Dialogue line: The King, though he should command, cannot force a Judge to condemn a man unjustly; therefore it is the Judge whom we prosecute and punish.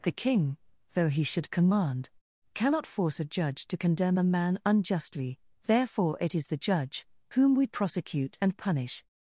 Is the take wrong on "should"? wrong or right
right